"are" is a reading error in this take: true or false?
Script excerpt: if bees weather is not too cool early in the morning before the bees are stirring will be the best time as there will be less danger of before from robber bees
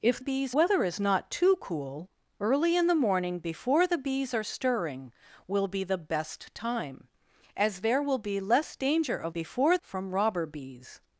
false